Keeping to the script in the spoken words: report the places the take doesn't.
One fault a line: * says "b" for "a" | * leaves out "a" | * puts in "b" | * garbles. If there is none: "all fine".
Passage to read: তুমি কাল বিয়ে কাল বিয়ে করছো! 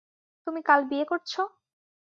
* leaves out "কাল বিয়ে"